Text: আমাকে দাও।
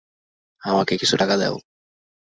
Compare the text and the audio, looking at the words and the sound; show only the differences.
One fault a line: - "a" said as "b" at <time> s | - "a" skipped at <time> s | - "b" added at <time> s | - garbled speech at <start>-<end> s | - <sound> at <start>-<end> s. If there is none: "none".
- "কিছু টাকা" added at 0.9 s